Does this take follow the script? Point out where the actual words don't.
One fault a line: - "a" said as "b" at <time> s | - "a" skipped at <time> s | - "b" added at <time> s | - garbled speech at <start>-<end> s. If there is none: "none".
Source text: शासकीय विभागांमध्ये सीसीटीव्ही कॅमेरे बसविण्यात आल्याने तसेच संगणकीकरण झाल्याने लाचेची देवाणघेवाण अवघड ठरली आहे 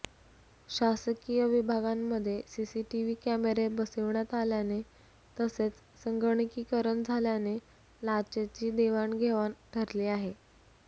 - "अवघड" skipped at 9.5 s